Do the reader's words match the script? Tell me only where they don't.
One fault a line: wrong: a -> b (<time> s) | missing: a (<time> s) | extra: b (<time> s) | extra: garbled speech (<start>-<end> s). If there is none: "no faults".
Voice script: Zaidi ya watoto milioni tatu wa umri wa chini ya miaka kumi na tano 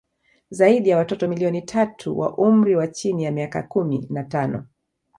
no faults